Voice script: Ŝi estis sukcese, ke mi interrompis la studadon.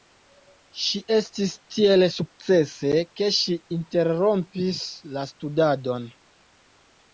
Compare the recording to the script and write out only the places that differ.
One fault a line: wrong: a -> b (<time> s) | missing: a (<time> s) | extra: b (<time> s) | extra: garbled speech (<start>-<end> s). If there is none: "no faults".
extra: tiel (1.8 s)
wrong: mi -> ŝi (3.4 s)